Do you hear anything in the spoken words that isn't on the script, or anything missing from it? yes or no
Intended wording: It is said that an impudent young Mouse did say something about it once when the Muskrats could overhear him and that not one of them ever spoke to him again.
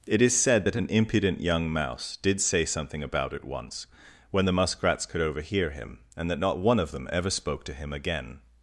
no